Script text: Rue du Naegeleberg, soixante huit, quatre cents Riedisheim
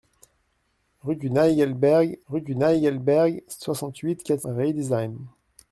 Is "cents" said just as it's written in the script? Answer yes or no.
no